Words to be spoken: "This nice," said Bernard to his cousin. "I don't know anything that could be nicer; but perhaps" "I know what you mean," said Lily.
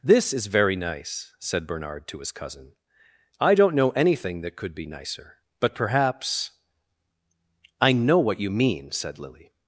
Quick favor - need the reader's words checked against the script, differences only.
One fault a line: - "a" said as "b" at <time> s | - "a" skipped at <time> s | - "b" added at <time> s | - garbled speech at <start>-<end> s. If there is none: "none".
- "is very" added at 0.3 s